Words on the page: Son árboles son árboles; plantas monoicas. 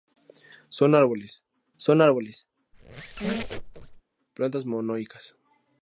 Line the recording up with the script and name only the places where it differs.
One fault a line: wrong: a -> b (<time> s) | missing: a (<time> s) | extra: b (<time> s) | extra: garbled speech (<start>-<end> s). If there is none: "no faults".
no faults